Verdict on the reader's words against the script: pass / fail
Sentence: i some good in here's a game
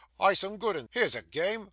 pass